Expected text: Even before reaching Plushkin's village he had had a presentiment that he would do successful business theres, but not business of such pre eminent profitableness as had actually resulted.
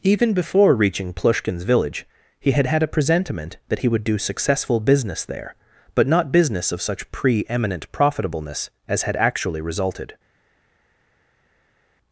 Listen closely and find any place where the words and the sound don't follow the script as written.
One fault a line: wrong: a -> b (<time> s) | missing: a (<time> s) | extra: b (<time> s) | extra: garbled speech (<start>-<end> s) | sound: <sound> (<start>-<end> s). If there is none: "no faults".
wrong: theres -> there (5.3 s)